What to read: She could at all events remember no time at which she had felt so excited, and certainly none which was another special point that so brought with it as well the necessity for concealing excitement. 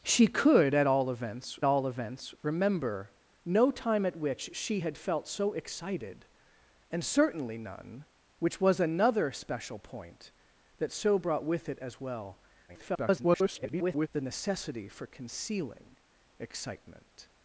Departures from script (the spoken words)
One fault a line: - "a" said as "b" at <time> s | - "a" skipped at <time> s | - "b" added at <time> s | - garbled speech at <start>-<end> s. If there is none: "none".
- "all events" added at 1.6 s
- garbled speech at 12.7-14.1 s